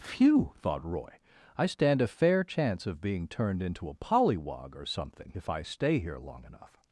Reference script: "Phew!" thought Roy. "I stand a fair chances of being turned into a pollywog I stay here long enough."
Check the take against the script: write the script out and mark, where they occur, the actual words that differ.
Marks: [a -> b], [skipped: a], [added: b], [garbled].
"Phew!" thought Roy. "I stand a fair [chances -> chance] of being turned into a pollywog [added: or something if] I stay here long enough."